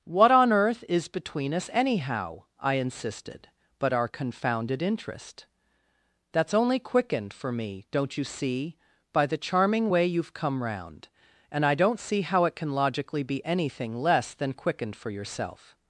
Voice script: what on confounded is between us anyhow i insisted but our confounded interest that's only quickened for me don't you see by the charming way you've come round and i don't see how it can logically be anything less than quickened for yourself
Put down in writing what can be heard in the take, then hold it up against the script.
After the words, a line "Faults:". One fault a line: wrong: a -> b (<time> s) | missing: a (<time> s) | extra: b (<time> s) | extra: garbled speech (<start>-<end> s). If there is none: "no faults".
what on earth is between us anyhow i insisted but our confounded interest that's only quickened for me don't you see by the charming way you've come round and i don't see how it can logically be anything less than quickened for yourself
Faults:
wrong: confounded -> earth (0.5 s)